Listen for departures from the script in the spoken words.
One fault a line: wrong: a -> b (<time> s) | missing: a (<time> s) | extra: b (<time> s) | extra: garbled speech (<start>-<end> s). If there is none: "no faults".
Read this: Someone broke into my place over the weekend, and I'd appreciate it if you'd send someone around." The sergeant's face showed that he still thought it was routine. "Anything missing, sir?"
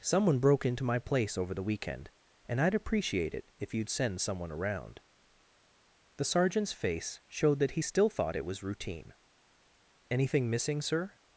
no faults